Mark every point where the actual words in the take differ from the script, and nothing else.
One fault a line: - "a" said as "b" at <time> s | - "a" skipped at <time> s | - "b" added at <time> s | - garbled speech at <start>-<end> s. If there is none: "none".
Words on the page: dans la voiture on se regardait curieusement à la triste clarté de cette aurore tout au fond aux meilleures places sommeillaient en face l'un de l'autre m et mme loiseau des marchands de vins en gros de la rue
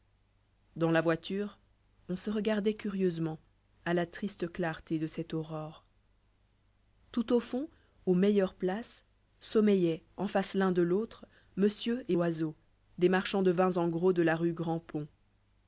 - "mme" skipped at 12.2 s